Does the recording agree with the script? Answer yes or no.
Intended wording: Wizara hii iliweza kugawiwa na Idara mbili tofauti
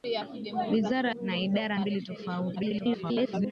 no